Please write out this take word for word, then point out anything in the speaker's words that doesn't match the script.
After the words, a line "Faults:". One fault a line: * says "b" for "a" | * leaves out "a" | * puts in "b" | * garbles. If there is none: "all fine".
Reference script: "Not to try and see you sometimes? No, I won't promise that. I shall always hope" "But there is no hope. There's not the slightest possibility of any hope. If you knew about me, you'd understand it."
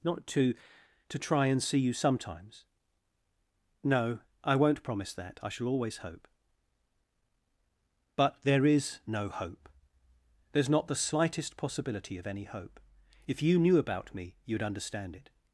"Not to to try and see you sometimes? No, I won't promise that. I shall always hope" "But there is no hope. There's not the slightest possibility of any hope. If you knew about me, you'd understand it."
Faults:
* puts in "to"